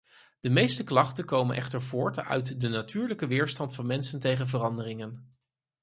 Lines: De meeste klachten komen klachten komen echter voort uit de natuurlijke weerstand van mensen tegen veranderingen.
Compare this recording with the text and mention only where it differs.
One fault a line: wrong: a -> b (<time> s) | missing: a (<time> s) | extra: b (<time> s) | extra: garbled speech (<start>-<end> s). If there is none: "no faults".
missing: klachten komen (1.6 s)